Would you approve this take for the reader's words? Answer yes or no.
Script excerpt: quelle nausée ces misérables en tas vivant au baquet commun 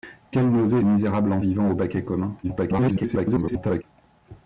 no